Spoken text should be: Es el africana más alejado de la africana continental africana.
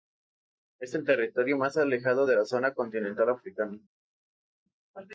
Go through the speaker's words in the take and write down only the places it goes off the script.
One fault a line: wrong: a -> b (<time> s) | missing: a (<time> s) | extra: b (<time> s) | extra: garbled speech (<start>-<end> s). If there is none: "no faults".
wrong: africana -> territorio (1.1 s)
wrong: africana -> zona (2.4 s)